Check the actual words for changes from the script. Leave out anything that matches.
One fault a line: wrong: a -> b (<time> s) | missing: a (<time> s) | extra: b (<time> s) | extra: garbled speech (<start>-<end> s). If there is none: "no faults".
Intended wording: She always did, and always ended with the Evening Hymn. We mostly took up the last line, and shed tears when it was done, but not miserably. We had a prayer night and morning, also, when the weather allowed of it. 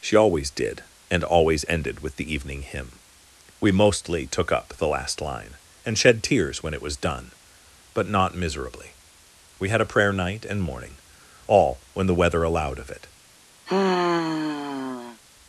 wrong: also -> all (11.4 s)